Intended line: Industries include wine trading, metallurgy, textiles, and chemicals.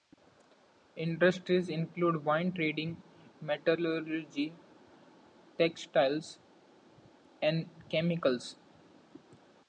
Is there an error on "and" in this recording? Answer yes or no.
no